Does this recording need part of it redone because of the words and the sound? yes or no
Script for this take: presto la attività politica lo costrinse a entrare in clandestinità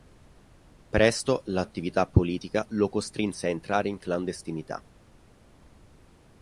no